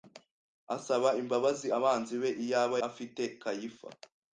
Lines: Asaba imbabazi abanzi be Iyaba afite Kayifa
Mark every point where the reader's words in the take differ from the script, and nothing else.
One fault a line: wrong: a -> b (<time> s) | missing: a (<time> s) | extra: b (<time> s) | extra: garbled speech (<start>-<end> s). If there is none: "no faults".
no faults